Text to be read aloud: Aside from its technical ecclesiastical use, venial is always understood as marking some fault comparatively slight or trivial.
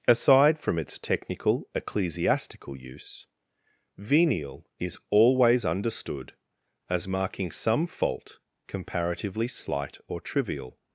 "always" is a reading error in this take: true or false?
false